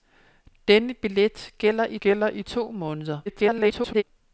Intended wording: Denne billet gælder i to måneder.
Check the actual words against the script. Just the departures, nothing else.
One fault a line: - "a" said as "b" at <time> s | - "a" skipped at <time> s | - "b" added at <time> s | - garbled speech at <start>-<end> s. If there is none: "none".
- "gælder i" added at 2.0 s
- garbled speech at 3.3-4.0 s